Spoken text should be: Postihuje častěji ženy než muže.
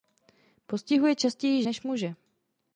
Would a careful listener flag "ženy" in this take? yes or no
yes